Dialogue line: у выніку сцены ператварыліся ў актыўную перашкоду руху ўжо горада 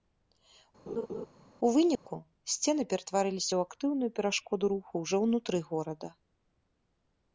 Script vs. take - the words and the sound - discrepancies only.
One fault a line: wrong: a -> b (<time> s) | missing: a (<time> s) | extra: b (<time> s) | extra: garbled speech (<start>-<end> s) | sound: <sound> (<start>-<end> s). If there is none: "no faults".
sound: laugh (0.9-1.3 s)
sound: dropout (2.0-2.1 s)
extra: ўнутры (5.3 s)